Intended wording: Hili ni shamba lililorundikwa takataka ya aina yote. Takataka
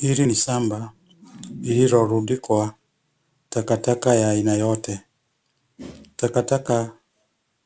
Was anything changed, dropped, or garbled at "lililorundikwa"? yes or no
no